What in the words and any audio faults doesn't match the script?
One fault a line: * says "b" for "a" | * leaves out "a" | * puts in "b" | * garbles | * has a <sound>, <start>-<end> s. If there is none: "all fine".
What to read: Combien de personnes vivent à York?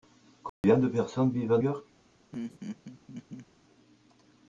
* has a dropout, 0.5-0.6 s
* has a laugh, 2.3-3.5 s